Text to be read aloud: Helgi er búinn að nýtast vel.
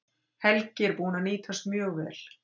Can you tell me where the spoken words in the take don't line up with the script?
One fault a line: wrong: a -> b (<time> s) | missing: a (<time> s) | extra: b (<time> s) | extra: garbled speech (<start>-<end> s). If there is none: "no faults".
extra: mjög (1.7 s)